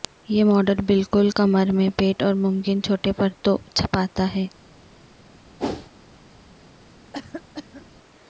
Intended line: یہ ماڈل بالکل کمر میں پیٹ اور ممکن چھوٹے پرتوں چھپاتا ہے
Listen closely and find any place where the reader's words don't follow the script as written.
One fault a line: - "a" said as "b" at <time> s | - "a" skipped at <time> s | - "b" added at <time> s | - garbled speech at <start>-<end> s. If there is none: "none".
none